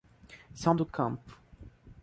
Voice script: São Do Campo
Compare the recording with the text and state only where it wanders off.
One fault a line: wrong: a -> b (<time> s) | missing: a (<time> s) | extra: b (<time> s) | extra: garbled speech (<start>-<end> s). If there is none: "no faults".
no faults